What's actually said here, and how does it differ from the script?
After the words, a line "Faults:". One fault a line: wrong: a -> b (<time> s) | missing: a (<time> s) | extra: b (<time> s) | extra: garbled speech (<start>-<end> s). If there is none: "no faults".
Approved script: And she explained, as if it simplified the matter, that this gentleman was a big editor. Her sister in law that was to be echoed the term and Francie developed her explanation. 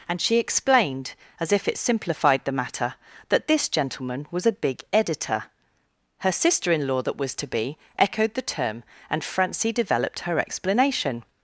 And she explained, as if it simplified the matter, that this gentleman was a big editor. Her sister in law that was to be echoed the term and Francie developed her explanation.
Faults:
no faults